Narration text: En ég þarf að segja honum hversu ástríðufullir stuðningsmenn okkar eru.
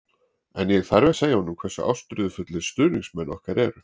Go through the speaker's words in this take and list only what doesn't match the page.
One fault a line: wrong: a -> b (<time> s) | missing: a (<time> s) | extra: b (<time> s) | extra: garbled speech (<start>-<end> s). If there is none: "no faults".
no faults